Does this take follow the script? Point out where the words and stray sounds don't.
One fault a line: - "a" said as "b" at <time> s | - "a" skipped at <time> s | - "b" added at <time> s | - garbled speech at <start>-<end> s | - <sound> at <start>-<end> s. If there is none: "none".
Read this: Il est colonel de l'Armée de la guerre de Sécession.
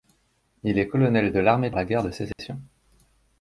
- dropout at 2.3-2.4 s